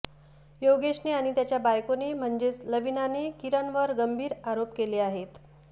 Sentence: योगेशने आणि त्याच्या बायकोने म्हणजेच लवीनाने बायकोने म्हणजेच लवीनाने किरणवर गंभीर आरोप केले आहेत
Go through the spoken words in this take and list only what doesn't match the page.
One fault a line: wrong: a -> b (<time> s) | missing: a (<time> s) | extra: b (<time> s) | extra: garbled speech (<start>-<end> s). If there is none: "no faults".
missing: बायकोने म्हणजेच लवीनाने (3.3 s)